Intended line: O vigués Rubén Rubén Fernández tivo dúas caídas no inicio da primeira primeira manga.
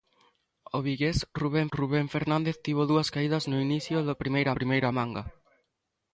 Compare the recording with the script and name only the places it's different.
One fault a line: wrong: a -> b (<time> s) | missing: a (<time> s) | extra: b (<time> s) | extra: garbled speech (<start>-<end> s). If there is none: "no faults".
no faults